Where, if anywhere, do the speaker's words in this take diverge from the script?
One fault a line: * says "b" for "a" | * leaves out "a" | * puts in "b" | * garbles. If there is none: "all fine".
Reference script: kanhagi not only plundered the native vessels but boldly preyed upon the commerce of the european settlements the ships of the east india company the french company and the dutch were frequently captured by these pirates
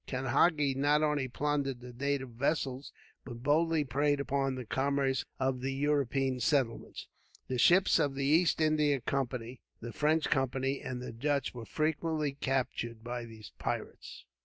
all fine